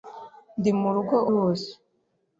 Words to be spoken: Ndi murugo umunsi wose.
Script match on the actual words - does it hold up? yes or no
no